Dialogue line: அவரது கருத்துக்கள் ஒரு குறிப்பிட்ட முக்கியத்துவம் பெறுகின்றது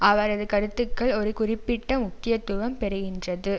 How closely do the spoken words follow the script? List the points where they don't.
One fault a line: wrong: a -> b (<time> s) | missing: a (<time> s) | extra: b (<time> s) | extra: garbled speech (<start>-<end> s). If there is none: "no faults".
no faults